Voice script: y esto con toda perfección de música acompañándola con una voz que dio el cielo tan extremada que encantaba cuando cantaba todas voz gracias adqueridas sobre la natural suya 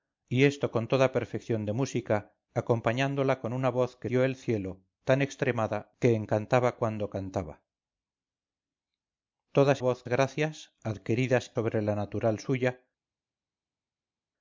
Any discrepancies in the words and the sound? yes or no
no